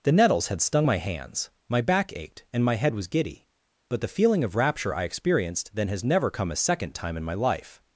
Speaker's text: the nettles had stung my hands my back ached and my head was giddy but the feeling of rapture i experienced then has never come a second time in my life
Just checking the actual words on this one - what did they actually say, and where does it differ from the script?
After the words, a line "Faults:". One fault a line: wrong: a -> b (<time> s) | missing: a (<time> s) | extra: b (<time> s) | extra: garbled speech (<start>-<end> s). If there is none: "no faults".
the nettles had stung my hands my back ached and my head was giddy but the feeling of rapture i experienced then has never come a second time in my life
Faults:
no faults